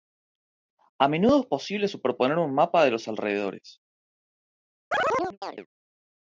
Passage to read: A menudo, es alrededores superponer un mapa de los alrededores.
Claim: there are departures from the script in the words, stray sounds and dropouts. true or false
true